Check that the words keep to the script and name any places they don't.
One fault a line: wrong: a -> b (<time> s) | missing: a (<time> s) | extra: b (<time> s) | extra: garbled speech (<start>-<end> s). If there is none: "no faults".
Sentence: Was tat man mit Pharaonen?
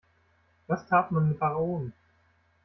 no faults